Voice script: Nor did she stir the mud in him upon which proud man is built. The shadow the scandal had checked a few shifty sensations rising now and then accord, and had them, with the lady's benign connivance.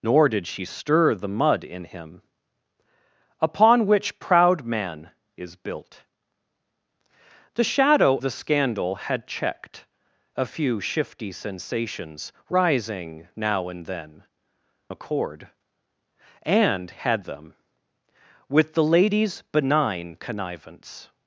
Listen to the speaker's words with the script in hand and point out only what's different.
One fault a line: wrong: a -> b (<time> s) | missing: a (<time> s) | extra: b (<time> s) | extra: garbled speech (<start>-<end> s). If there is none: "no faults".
no faults